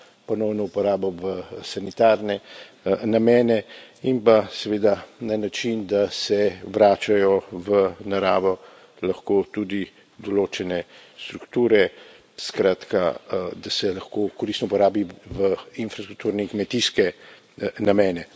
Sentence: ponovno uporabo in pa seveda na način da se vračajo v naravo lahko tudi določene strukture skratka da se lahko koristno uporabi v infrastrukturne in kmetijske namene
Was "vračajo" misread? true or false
false